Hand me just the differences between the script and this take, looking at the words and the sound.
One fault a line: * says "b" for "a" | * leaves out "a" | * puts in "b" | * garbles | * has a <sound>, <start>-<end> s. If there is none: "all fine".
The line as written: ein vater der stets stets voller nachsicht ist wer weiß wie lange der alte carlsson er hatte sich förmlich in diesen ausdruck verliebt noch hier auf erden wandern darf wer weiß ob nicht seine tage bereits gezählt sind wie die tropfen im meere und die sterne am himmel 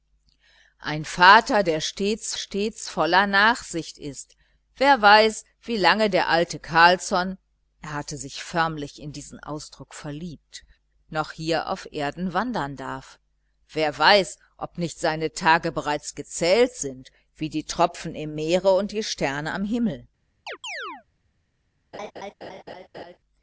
* has a chirp, 20.5-21.0 s
* has a laugh, 21.9-23.2 s